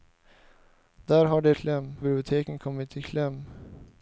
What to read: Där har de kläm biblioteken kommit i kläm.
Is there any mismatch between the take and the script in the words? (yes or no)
no